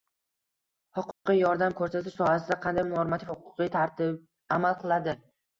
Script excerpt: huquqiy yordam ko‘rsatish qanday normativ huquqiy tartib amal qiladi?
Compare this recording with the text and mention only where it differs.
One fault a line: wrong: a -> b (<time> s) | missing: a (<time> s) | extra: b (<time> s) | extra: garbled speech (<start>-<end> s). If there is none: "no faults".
extra: sohasida (2.2 s)